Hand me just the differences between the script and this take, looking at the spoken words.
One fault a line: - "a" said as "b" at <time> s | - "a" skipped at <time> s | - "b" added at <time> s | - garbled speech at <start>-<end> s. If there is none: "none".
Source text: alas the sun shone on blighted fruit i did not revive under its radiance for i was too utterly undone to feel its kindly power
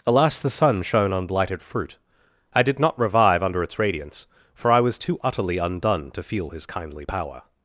- "its" said as "his" at 6.5 s